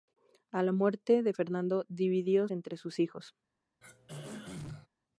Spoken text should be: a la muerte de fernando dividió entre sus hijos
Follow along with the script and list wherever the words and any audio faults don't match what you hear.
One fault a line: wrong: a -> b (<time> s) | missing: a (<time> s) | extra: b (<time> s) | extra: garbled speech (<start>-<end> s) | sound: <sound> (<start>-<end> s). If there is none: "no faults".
sound: throat clearing (3.8-4.9 s)